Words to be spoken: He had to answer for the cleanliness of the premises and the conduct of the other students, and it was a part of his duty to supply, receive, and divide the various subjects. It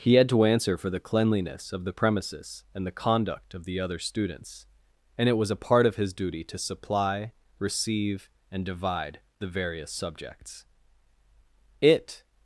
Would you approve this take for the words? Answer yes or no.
yes